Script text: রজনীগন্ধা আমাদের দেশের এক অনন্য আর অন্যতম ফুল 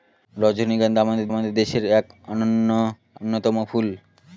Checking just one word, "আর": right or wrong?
wrong